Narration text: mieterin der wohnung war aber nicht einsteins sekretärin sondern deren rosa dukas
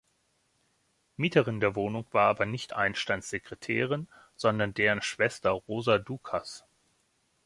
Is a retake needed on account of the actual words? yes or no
yes